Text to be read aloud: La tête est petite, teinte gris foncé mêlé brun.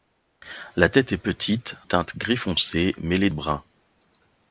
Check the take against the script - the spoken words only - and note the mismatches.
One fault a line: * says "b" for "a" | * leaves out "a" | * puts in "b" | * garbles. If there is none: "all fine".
all fine